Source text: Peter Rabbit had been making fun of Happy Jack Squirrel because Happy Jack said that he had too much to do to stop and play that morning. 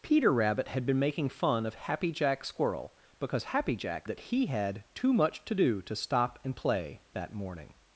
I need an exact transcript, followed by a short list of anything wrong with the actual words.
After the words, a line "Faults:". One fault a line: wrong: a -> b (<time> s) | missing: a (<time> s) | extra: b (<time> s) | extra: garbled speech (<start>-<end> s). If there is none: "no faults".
Peter Rabbit had been making fun of Happy Jack Squirrel because Happy Jack that he had too much to do to stop and play that morning.
Faults:
missing: said (4.1 s)